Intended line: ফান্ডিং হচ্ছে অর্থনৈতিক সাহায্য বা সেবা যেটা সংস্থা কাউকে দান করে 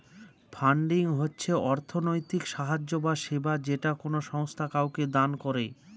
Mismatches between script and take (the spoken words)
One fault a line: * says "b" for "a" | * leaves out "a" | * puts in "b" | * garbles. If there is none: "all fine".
* puts in "কোনো"